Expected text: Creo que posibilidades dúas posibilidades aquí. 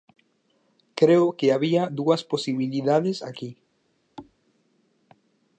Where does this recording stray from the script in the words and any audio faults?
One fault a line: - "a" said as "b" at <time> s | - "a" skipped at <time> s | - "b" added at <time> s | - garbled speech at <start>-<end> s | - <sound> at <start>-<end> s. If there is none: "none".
- "posibilidades" said as "había" at 1.5 s
- thud at 4.2-4.4 s